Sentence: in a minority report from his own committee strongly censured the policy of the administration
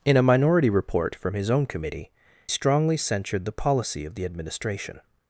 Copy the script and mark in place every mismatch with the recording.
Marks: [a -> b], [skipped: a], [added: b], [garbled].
in a minority report from his own committee strongly censured the policy of the administration